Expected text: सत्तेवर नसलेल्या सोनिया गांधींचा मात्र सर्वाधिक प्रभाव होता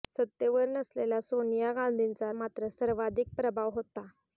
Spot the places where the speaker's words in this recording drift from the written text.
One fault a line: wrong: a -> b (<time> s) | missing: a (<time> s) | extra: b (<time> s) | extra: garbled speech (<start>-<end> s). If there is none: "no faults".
no faults